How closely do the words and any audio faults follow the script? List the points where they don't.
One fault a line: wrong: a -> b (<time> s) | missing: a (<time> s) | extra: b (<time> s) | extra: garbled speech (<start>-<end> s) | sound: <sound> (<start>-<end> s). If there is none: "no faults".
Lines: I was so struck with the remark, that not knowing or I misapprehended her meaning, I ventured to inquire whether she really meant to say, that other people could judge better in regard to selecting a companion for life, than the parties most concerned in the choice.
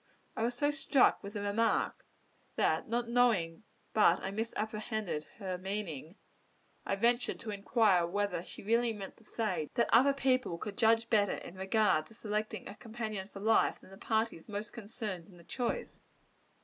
wrong: or -> but (3.9 s)